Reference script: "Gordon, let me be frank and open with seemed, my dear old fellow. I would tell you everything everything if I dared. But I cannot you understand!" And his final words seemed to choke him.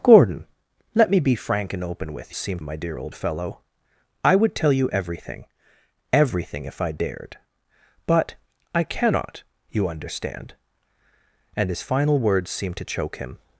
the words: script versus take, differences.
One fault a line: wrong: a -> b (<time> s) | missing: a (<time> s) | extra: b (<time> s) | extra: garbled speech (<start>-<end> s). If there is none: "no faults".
no faults